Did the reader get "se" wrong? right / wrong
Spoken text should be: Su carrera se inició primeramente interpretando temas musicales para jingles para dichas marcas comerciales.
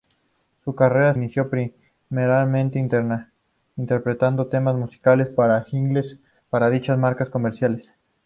wrong